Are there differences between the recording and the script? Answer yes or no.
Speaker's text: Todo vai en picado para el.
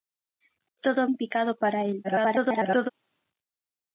yes